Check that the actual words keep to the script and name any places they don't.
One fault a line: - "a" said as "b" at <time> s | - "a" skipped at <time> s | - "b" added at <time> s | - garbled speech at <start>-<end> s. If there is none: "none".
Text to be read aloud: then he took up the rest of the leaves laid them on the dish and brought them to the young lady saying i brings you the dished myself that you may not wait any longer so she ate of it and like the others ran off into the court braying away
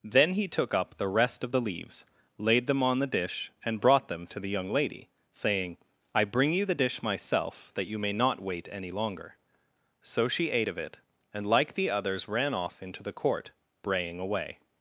- "brings" said as "bring" at 6.2 s
- "dished" said as "dish" at 6.7 s